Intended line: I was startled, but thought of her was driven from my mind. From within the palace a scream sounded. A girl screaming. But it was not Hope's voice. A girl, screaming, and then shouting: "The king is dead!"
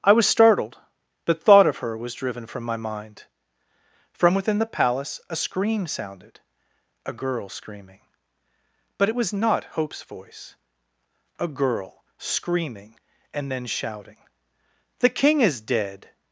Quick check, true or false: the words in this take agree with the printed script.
true